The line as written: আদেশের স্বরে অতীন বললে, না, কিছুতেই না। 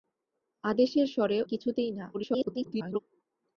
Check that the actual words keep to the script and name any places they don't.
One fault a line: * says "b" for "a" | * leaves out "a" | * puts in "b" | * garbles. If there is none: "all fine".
* leaves out "অতীন বললে না"
* garbles